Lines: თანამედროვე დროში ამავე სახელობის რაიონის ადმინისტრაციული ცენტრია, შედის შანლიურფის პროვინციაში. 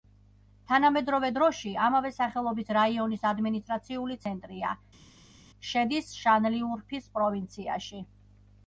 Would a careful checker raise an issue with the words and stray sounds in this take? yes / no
no